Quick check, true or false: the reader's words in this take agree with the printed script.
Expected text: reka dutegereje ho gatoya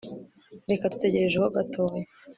true